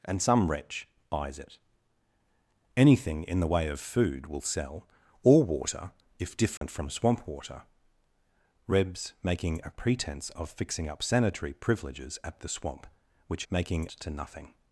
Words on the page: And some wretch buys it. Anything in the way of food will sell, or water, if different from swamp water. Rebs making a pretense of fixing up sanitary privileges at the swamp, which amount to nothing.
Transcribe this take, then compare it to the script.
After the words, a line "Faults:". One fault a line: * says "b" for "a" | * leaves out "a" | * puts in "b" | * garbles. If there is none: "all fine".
And some wretch buys it. Anything in the way of food will sell, or water, if different from swamp water. Rebs making a pretense of fixing up sanitary privileges at the swamp, which making to nothing.
Faults:
* says "making" for "amount"